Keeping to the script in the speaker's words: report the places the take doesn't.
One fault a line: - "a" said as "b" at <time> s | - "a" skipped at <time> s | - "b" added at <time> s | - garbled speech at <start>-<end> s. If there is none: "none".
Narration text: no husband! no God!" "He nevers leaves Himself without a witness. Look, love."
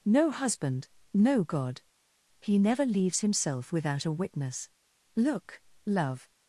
- "nevers" said as "never" at 2.6 s